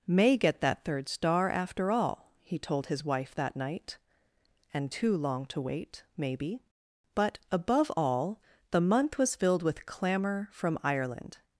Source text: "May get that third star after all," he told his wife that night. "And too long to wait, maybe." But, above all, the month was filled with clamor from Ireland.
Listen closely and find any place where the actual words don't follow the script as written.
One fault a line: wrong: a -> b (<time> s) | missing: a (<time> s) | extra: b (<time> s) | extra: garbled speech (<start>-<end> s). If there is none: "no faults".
no faults